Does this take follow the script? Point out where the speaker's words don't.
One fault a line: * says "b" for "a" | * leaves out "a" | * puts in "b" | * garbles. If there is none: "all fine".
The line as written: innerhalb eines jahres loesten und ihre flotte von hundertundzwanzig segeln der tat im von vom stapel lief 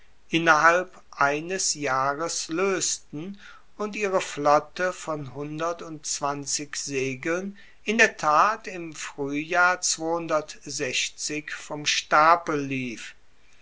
* puts in "in"
* says "fruehjahr" for "von"